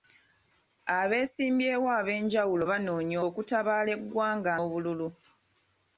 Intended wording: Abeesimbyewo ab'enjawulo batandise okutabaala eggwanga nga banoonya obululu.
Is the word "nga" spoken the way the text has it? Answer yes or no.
no